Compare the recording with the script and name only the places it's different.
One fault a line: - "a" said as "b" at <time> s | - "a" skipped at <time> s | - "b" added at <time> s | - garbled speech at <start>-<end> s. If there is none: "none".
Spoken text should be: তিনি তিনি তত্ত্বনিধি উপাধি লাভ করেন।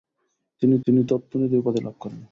none